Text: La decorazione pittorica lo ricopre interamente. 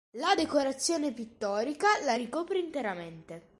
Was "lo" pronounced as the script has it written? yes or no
no